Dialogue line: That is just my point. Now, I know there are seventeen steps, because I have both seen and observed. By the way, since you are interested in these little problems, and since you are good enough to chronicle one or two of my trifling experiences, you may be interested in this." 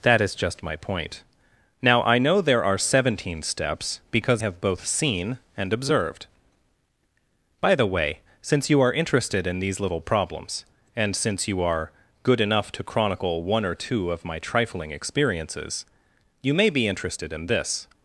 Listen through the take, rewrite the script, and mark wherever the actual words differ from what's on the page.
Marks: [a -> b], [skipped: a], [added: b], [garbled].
That is just my point. Now, I know there are seventeen steps, because [skipped: I] have both seen and observed. By the way, since you are interested in these little problems, and since you are good enough to chronicle one or two of my trifling experiences, you may be interested in this."